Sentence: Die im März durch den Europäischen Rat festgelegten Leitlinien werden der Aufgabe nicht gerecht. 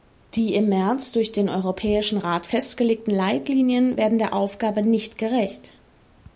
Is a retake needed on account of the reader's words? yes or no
no